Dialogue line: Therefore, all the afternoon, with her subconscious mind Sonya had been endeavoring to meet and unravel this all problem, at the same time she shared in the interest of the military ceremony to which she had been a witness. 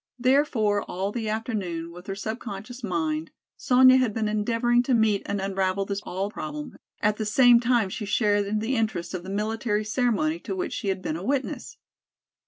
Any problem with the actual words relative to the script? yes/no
no